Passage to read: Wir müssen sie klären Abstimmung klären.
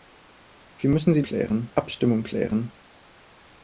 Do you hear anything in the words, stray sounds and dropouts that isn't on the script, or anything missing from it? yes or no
no